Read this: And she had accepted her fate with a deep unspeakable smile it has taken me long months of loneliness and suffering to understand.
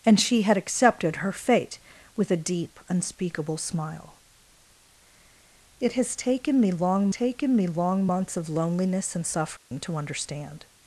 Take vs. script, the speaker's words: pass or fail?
fail